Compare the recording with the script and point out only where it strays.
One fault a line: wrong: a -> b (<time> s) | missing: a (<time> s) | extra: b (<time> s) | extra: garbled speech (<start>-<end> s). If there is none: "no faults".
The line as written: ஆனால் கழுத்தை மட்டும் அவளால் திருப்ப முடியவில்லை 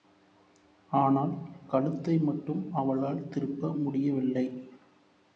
no faults